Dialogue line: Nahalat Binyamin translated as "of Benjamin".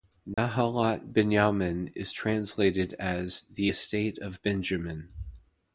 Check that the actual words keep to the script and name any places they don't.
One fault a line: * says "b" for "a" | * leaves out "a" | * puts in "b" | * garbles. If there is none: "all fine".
* puts in "is"
* puts in "the estate"